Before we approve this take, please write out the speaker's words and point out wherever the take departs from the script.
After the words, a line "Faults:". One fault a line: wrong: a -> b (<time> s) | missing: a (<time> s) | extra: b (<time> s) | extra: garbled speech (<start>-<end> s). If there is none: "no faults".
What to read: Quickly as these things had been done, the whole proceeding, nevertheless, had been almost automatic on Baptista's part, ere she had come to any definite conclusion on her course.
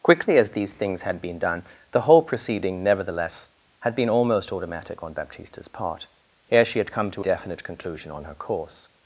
Quickly as these things had been done, the whole proceeding, nevertheless, had been almost automatic on Baptista's part, ere she had come to definite conclusion on her course.
Faults:
missing: any (7.2 s)